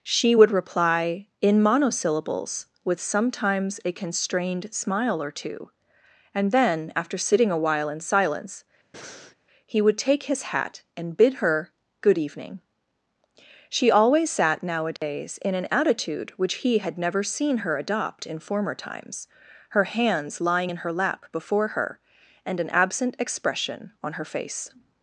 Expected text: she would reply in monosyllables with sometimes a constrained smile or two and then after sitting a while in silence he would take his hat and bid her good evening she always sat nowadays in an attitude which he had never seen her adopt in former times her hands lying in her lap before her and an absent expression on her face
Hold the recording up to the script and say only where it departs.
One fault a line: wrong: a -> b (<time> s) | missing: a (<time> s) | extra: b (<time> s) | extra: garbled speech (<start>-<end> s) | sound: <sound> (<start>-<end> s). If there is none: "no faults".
sound: breath (8.9-9.4 s)
sound: dropout (15.0-15.0 s)